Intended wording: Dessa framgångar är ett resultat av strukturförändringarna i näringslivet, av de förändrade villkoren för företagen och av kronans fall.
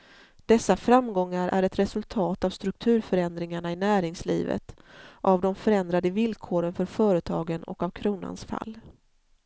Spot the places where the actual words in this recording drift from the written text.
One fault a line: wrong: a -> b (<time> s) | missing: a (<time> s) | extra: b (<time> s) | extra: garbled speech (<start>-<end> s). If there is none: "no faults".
no faults